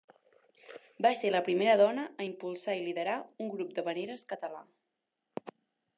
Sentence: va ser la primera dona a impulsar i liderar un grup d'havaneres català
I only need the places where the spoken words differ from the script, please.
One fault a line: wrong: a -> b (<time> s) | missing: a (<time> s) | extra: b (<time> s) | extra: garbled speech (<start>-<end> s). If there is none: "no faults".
no faults